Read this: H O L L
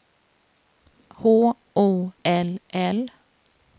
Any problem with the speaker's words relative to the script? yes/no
no